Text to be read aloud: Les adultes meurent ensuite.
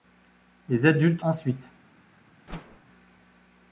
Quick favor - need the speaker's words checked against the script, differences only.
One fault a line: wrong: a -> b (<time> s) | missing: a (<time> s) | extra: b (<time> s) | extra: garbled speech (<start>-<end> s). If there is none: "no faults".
missing: meurent (1.2 s)